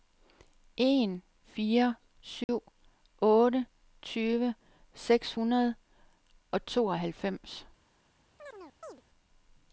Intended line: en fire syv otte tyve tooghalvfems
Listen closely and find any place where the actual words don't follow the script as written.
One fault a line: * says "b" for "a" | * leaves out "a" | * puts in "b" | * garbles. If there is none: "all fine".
* puts in "seks hundrede og"